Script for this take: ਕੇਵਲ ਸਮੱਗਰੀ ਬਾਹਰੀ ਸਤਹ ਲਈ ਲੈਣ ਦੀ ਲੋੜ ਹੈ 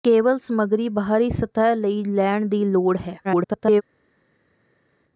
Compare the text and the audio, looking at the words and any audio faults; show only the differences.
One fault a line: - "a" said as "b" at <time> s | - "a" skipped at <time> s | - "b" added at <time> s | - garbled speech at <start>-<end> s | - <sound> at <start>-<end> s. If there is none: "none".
- garbled speech at 3.2-3.8 s